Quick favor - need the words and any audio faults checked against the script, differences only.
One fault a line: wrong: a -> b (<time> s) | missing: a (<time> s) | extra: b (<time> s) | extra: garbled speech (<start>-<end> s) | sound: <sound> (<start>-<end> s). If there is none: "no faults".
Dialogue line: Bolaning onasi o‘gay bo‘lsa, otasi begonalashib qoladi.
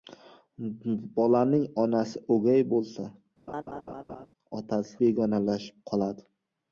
sound: laugh (3.5-4.3 s)